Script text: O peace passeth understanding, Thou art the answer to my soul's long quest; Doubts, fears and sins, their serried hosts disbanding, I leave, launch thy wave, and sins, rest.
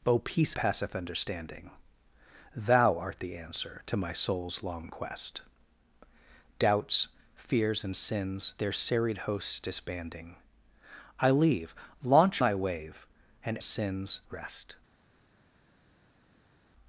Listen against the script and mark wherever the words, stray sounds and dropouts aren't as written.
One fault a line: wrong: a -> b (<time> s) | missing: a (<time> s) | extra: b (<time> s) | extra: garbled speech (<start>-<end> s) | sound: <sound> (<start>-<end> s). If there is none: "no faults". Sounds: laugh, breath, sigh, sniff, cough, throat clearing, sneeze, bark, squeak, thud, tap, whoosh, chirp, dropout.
no faults